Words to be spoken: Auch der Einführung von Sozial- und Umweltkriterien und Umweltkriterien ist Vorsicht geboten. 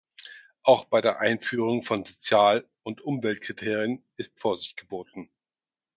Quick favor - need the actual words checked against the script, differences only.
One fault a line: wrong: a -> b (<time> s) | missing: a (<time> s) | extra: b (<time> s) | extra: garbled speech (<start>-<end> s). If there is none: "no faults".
extra: bei (0.8 s)
missing: und Umweltkriterien (4.0 s)